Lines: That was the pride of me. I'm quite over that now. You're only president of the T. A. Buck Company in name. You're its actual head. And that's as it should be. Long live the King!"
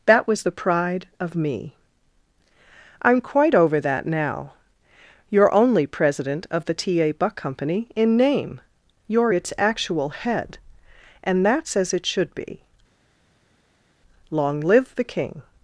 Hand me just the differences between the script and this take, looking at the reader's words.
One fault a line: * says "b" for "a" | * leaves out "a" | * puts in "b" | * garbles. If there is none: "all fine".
all fine